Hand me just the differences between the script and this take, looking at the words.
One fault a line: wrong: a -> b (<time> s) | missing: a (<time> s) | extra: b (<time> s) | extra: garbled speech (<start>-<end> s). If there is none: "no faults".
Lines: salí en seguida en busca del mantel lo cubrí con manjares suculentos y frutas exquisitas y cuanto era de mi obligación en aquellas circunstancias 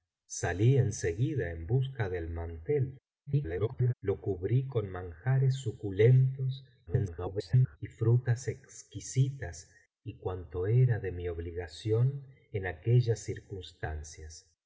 extra: garbled speech (3.3-3.9 s)
extra: garbled speech (6.9-7.8 s)